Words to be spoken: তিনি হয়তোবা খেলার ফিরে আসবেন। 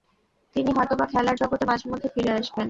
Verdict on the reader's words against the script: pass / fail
fail